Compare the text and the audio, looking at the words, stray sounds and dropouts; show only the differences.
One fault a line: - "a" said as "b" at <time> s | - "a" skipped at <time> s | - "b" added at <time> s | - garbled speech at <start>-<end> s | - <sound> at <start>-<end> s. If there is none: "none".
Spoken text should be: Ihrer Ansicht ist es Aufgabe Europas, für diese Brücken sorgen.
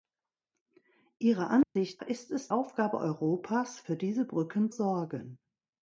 - dropout at 1.6-1.8 s